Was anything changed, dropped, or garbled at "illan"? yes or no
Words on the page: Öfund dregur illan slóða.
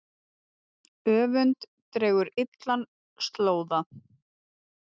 no